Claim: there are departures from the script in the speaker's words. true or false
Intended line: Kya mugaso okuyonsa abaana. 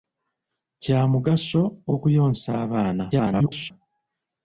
true